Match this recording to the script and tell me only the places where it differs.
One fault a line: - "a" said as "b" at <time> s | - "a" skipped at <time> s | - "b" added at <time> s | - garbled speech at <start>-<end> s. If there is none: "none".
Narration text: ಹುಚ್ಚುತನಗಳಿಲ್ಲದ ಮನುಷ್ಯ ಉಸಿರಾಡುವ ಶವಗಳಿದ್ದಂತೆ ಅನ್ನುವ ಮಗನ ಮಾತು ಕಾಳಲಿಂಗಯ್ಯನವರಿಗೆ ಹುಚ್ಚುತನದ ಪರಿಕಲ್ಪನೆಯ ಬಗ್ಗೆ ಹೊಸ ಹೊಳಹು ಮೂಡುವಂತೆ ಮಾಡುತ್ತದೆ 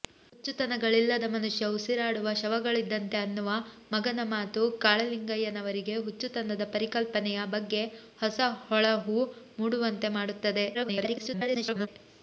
- garbled speech at 10.7-11.9 s